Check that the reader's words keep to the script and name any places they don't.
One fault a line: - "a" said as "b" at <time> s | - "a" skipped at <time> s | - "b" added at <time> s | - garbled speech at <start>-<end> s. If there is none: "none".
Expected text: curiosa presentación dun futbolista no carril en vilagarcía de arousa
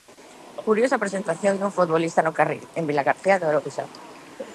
none